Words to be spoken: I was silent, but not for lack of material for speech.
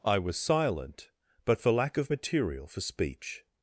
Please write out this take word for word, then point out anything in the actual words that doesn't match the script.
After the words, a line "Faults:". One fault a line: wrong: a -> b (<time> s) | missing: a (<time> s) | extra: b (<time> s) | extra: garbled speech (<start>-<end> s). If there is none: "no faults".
I was silent, but for lack of material for speech.
Faults:
missing: not (1.6 s)